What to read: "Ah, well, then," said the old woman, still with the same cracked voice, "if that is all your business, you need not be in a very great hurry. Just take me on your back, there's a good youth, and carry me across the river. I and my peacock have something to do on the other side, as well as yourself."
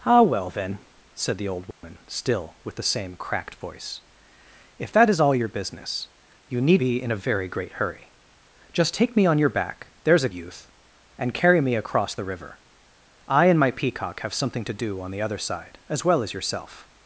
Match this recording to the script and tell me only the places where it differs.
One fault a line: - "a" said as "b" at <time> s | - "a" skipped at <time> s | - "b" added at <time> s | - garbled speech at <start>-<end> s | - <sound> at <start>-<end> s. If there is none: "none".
- dropout at 1.7-1.8 s
- "not" skipped at 6.8 s
- "good" skipped at 10.3 s